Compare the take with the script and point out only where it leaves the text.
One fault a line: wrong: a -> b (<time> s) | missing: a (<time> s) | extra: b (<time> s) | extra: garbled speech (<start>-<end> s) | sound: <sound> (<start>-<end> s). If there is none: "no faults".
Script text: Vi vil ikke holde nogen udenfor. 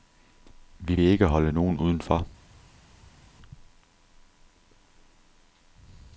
no faults